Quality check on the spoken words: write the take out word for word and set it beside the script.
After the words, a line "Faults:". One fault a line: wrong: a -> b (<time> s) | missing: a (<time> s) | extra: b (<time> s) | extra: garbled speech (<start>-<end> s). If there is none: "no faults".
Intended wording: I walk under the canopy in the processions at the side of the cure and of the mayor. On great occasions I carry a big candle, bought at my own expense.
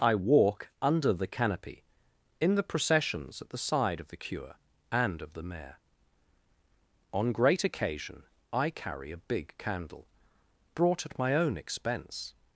I walk under the canopy in the processions at the side of the cure and of the mayor. On great occasion I carry a big candle, brought at my own expense.
Faults:
wrong: occasions -> occasion (7.6 s)
wrong: bought -> brought (10.7 s)